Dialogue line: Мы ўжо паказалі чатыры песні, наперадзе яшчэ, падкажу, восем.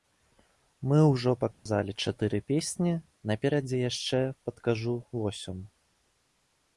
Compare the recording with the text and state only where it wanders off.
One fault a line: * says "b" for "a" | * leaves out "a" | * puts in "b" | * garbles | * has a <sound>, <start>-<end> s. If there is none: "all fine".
* has a dropout, 1.5-1.7 s